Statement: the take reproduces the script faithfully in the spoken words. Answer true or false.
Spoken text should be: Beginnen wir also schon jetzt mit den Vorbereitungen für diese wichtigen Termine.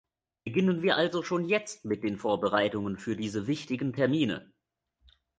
true